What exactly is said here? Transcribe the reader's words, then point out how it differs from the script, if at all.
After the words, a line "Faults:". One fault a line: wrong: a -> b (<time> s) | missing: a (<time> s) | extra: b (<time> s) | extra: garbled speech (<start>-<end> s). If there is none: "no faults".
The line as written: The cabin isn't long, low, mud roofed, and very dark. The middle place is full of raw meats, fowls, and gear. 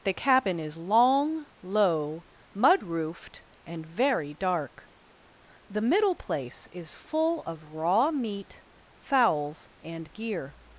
The cabin is long, low, mud roofed, and very dark. The middle place is full of raw meat, fowls, and gear.
Faults:
wrong: isn't -> is (0.6 s)
wrong: meats -> meat (8.1 s)